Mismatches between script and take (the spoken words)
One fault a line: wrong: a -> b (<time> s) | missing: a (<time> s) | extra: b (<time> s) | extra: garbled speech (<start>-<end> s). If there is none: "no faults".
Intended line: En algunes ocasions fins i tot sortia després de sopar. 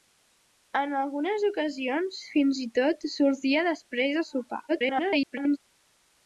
extra: garbled speech (4.7-5.6 s)